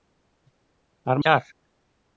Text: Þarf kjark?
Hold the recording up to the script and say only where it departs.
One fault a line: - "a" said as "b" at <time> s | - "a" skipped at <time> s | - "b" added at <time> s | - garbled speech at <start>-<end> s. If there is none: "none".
none